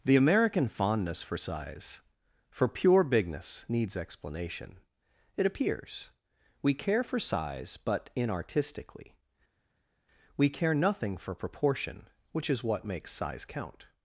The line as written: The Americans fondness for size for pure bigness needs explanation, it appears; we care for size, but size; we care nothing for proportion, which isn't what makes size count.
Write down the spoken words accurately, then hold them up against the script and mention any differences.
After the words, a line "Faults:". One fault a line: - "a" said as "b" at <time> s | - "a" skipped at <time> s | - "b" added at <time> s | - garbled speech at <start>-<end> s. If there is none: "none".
The American fondness for size for pure bigness needs explanation, it appears; we care for size, but inartistically; we care nothing for proportion, which is what makes size count.
Faults:
- "Americans" said as "American" at 0.1 s
- "size" said as "inartistically" at 8.2 s
- "isn't" said as "is" at 12.5 s